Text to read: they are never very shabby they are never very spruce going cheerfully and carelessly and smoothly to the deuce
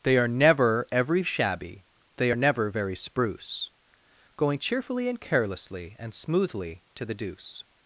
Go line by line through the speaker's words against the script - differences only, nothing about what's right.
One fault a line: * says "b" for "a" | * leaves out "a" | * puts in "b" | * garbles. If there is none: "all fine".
* says "every" for "very"